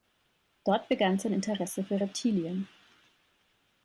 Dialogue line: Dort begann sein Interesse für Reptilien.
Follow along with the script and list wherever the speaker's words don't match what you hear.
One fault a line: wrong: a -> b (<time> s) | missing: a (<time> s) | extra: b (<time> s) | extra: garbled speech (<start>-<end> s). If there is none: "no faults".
no faults